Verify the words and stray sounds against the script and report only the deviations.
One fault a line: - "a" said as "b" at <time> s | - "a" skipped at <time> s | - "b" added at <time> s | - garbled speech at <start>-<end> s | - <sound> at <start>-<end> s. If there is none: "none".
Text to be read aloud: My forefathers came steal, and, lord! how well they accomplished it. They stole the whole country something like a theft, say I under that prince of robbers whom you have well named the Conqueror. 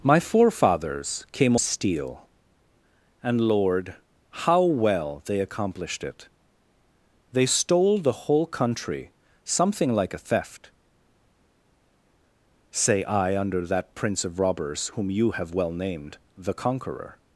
none